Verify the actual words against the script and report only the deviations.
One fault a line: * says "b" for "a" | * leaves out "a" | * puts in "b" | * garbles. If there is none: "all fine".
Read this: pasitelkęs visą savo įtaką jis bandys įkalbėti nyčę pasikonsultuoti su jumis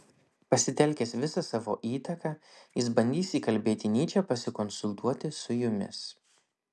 all fine